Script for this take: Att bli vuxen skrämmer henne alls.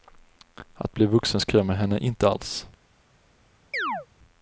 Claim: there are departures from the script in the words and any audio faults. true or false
true